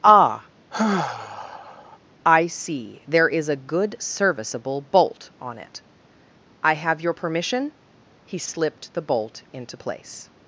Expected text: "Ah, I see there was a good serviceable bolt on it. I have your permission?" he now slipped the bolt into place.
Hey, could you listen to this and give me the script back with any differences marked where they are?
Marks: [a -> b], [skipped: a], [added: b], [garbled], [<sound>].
"Ah, [sigh] I see there [was -> is] a good serviceable bolt on it. I have your permission?" he [skipped: now] slipped the bolt into place.